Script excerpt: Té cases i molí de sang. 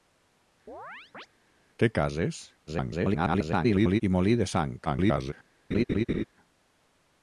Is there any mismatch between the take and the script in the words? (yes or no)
yes